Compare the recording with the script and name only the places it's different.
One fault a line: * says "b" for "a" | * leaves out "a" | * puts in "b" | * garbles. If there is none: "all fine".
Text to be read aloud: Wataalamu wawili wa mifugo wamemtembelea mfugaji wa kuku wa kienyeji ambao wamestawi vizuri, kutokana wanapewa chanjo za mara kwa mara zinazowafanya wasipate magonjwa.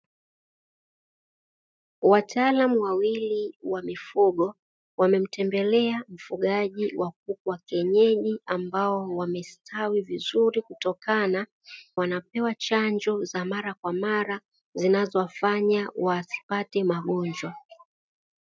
all fine